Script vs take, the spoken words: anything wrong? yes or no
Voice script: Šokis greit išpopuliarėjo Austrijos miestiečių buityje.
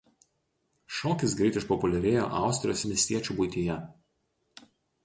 no